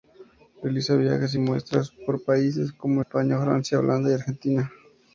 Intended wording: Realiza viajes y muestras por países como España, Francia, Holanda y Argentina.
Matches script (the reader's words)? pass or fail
pass